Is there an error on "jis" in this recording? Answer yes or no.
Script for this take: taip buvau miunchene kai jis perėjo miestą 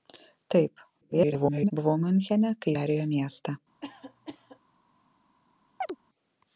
yes